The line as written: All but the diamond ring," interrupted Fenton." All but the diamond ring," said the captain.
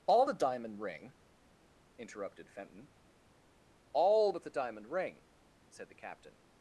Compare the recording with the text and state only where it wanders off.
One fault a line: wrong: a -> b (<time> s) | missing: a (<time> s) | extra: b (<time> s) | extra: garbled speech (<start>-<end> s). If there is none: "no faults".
missing: but (0.3 s)